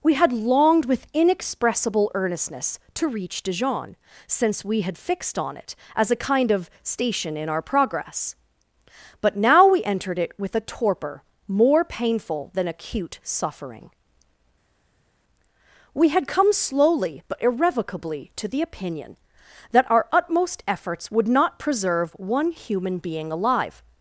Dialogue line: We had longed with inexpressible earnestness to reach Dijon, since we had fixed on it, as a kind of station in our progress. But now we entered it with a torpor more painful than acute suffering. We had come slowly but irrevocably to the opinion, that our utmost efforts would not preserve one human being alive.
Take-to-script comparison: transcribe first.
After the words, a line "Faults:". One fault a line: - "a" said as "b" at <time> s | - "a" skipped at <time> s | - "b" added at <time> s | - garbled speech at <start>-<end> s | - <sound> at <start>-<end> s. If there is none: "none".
We had longed with inexpressible earnestness to reach Dijon, since we had fixed on it, as a kind of station in our progress. But now we entered it with a torpor more painful than acute suffering. We had come slowly but irrevocably to the opinion, that our utmost efforts would not preserve one human being alive.
Faults:
none